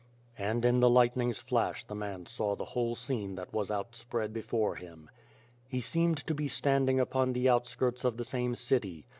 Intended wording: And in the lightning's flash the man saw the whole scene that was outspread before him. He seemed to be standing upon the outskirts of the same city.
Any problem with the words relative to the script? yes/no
no